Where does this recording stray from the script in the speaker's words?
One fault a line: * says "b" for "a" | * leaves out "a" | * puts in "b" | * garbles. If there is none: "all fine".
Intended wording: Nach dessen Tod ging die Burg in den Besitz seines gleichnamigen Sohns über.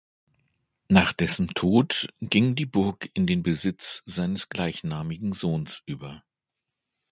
all fine